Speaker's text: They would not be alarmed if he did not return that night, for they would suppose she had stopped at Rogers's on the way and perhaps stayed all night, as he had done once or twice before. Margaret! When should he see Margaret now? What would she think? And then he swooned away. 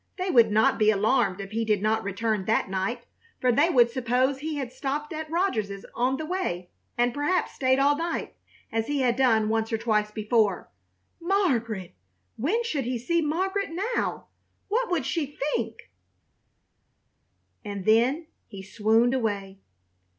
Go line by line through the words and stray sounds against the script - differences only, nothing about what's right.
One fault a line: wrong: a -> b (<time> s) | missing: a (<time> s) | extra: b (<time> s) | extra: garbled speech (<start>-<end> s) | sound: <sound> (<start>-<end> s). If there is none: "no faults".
wrong: she -> he (4.4 s)